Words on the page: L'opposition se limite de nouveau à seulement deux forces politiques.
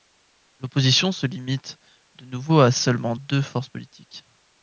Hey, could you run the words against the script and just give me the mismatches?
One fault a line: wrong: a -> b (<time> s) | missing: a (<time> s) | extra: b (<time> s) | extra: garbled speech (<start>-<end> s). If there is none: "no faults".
no faults